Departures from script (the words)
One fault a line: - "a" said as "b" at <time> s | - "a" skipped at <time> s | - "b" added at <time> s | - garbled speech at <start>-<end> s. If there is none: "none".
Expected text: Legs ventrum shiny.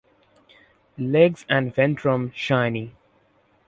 - "and" added at 1.5 s